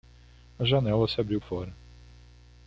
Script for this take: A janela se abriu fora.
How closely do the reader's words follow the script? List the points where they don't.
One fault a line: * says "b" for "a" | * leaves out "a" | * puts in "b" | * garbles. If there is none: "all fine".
all fine